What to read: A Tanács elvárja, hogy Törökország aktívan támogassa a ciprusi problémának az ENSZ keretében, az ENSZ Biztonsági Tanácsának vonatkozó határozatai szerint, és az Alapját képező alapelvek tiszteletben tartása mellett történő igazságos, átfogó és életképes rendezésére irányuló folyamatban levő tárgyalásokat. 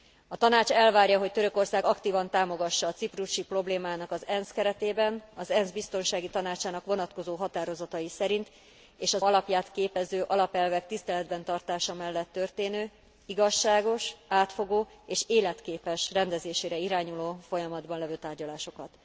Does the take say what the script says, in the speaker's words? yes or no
yes